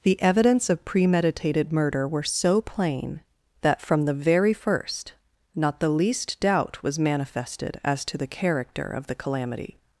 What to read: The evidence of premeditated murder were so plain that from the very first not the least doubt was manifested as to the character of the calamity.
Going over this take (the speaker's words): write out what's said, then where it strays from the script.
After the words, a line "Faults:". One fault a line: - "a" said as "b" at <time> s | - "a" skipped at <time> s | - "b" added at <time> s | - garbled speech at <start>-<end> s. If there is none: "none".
The evidence of premeditated murder were so plain that from the very first not the least doubt was manifested as to the character of the calamity.
Faults:
none